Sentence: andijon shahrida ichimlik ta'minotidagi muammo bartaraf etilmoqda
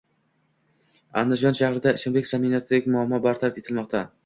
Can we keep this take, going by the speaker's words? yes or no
yes